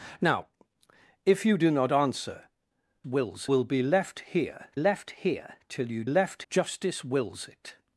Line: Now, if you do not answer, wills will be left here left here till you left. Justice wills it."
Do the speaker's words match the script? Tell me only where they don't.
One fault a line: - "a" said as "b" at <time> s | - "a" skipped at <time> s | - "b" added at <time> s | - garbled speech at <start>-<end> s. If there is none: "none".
none